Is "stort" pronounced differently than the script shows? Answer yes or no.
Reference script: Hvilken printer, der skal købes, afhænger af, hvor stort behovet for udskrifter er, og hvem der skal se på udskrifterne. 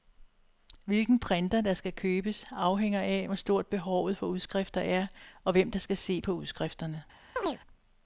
no